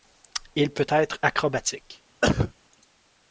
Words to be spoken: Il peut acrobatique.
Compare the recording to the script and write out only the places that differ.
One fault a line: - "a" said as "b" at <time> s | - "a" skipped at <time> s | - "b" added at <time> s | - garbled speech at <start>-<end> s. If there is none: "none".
- "être" added at 0.9 s